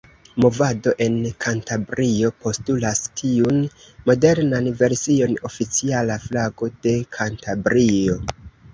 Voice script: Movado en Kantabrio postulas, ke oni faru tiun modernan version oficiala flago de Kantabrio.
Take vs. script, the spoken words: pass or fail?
fail